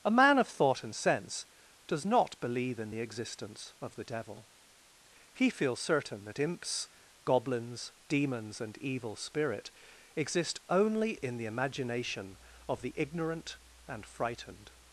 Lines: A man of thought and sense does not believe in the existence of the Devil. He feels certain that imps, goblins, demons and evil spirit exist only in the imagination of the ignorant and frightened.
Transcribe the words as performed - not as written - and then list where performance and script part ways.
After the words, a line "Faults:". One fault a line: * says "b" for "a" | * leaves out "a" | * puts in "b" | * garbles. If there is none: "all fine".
A man of thought and sense does not believe in the existence of the Devil. He feels certain that imps, goblins, demons and evil spirit exist only in the imagination of the ignorant and frightened.
Faults:
all fine